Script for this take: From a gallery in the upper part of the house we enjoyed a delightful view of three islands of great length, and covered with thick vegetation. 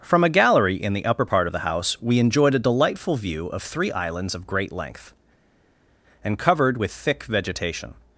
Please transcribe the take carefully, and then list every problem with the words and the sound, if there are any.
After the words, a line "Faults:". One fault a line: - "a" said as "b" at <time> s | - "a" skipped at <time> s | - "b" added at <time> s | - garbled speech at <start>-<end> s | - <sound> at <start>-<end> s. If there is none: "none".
From a gallery in the upper part of the house we enjoyed a delightful view of three islands of great length, and covered with thick vegetation.
Faults:
none